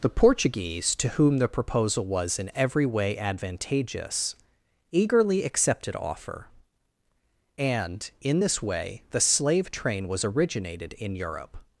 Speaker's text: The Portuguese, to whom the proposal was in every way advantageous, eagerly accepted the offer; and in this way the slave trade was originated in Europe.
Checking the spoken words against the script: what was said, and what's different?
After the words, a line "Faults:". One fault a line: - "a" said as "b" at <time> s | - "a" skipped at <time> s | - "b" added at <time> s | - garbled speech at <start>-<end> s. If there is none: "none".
The Portuguese, to whom the proposal was in every way advantageous, eagerly accepted offer; and in this way the slave train was originated in Europe.
Faults:
- "the" skipped at 6.0 s
- "trade" said as "train" at 9.7 s